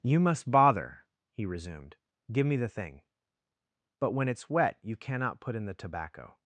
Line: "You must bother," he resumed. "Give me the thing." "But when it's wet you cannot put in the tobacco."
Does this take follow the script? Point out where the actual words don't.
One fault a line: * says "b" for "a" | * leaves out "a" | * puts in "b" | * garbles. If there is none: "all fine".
all fine